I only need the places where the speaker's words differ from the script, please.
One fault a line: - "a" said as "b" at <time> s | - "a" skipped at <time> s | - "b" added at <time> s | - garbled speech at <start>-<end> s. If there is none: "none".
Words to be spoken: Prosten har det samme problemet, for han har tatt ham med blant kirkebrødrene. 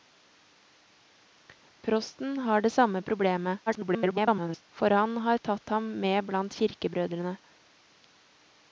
- garbled speech at 3.7-4.6 s